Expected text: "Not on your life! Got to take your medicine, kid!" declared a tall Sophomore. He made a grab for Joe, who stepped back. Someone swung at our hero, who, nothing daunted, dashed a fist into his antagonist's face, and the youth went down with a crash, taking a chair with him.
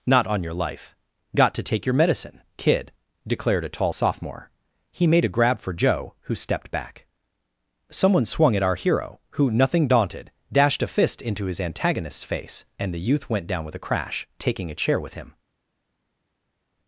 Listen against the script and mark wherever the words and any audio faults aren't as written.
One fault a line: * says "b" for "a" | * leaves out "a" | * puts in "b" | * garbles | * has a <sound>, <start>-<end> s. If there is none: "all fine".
all fine